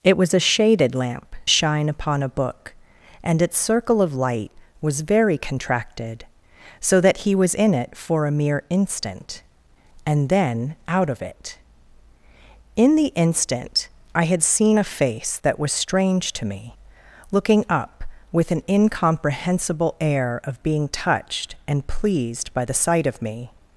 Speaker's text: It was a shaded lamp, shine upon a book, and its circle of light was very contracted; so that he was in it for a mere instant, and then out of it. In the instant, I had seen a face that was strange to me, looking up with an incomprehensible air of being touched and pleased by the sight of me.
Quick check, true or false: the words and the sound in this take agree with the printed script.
true